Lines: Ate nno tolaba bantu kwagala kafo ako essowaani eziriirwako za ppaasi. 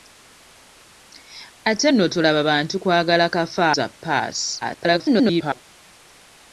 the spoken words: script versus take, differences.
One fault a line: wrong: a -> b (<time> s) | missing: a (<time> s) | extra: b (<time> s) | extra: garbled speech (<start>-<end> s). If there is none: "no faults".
missing: ako essowaani eziriirwako (3.6 s)
extra: garbled speech (4.6-5.6 s)